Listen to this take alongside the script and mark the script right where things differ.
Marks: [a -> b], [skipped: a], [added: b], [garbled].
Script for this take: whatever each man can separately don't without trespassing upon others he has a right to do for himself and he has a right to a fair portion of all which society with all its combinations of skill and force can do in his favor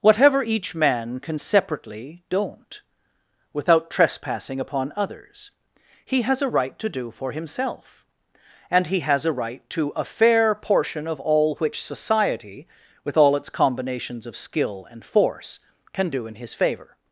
whatever each man can separately don't without trespassing upon others he has a right to do for himself and he has a right to a fair portion of all which society with all its combinations of skill and force can do in his favor